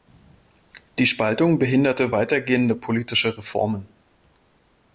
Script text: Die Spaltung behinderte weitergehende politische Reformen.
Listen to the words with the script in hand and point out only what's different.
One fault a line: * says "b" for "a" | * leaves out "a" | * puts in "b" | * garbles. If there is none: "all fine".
all fine